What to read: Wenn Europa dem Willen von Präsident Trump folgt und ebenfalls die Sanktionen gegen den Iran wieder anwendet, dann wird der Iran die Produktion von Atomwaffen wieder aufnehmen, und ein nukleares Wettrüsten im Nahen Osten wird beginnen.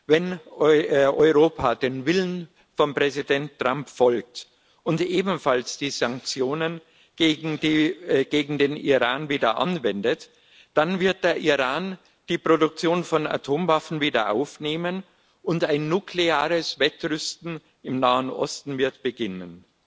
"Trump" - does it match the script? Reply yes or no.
yes